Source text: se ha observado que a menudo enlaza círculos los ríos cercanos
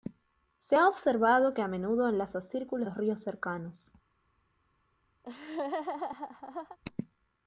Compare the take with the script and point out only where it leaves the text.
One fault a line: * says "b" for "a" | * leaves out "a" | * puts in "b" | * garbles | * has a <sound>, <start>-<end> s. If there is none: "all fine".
* has a laugh, 5.2-6.8 s